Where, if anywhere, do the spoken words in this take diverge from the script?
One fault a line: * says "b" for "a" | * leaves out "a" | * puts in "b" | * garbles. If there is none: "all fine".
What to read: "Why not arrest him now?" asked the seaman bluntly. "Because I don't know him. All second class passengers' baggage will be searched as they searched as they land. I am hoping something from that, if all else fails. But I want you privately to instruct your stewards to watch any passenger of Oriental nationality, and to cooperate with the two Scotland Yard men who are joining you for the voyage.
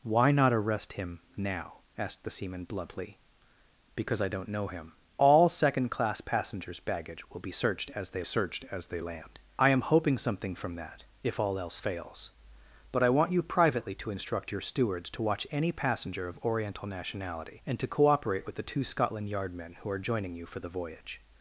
all fine